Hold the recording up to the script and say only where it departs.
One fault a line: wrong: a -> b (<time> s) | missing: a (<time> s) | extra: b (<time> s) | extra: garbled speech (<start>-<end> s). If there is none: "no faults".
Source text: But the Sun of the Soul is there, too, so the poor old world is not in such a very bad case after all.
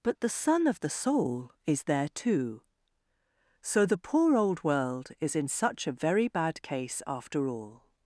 missing: not (5.3 s)